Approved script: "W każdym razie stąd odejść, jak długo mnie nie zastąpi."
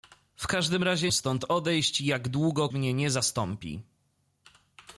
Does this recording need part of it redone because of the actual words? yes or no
no